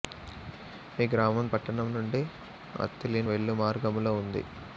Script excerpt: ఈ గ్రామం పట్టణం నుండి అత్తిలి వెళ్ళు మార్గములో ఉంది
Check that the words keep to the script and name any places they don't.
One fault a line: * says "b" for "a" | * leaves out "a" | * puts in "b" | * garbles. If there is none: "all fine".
all fine